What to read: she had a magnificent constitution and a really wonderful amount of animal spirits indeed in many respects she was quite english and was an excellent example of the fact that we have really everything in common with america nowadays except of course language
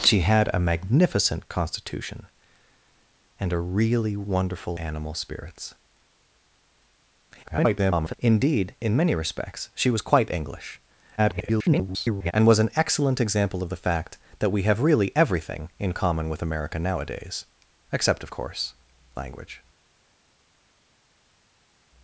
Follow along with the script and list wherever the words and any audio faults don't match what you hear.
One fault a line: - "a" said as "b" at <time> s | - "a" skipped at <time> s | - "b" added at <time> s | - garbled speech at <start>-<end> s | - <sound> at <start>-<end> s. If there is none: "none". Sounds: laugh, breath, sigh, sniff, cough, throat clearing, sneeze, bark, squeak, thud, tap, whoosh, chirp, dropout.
- "amount of" skipped at 4.8 s
- garbled speech at 7.4-8.1 s
- garbled speech at 11.2-12.3 s